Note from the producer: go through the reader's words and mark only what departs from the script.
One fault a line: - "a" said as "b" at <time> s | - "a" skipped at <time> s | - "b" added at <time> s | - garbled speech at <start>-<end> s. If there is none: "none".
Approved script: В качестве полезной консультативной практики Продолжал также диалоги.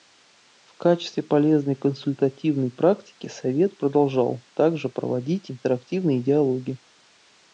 - "Совет" added at 3.3 s
- "проводить интерактивные" added at 4.9 s